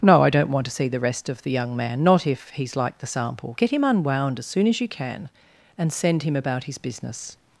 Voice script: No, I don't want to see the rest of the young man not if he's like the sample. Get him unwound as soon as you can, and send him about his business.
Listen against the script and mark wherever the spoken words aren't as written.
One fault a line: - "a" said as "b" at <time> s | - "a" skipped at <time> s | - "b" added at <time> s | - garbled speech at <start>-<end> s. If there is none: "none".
none